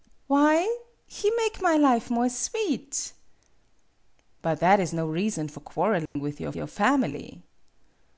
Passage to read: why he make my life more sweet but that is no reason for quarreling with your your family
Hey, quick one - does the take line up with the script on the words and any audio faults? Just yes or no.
no